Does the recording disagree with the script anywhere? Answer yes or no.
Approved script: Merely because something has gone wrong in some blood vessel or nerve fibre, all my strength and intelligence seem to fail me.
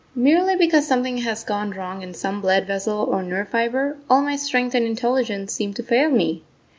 no